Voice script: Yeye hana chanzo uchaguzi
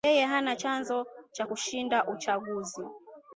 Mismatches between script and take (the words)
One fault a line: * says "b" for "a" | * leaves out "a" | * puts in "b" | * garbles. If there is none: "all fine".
* puts in "cha kushinda"